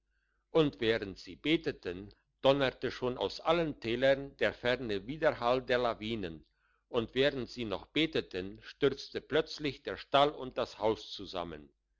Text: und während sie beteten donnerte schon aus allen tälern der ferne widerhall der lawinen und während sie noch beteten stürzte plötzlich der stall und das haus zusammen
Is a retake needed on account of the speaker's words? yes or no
no